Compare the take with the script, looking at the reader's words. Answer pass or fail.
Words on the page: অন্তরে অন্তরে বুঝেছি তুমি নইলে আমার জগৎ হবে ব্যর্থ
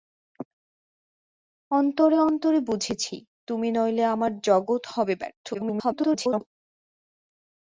fail